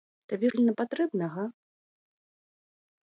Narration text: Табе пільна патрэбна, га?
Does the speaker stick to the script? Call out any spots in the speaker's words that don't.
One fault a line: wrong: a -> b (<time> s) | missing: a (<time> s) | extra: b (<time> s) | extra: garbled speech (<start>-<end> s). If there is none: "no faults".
no faults